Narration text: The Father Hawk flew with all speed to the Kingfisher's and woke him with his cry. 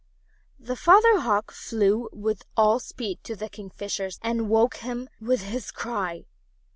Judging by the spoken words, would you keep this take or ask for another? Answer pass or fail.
pass